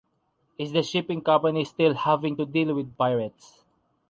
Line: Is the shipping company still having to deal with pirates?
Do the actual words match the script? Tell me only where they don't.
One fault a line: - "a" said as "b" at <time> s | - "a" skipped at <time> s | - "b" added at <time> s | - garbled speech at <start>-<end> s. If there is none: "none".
none